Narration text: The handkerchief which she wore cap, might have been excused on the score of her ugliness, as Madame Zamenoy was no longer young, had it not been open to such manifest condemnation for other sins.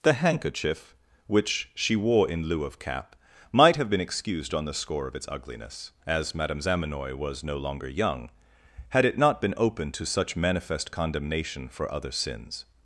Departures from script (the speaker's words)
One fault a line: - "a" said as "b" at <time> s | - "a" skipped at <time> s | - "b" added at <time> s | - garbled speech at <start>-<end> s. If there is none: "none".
- "in lieu of" added at 2.3 s
- "her" said as "its" at 5.2 s